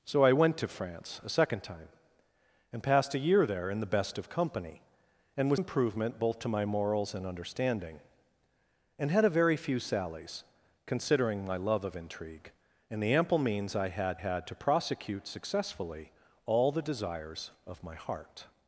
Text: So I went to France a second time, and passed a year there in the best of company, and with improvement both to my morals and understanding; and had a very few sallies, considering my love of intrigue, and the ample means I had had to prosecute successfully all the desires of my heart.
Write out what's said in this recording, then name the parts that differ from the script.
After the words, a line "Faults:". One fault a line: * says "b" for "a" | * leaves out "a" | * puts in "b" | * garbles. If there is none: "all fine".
So I went to France a second time, and passed a year there in the best of company, and with improvement both to my morals and understanding; and had a very few sallies, considering my love of intrigue, and the ample means I had had to prosecute successfully all the desires of my heart.
Faults:
all fine